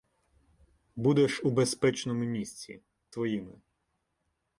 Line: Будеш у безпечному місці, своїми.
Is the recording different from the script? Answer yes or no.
no